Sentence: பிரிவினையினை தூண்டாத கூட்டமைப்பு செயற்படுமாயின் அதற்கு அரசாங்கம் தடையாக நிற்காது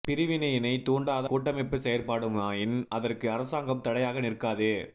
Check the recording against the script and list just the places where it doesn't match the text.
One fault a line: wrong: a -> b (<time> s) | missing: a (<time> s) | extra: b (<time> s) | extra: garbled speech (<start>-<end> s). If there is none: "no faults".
no faults